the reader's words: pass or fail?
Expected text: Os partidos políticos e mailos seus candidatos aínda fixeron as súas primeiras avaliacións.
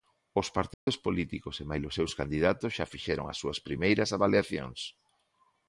fail